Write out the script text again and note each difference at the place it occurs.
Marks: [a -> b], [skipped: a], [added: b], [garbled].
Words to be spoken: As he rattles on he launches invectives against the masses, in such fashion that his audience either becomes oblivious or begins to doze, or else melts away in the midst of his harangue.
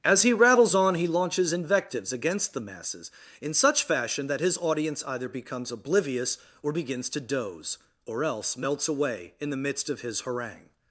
As he rattles on he launches invectives against the masses, in such fashion that his audience either becomes oblivious or begins to doze, or else melts away in the midst of his harangue.